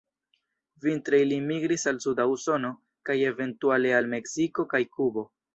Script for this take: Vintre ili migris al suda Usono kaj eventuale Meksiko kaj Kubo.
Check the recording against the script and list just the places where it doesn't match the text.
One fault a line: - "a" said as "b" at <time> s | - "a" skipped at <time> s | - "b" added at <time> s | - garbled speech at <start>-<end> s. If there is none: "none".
- "al" added at 4.0 s